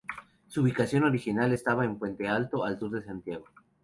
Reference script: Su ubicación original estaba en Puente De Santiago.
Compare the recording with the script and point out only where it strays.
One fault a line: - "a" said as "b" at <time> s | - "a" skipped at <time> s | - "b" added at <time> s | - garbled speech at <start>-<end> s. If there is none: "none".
- "Alto al sur" added at 2.3 s